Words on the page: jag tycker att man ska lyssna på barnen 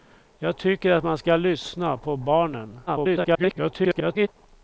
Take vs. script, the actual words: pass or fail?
fail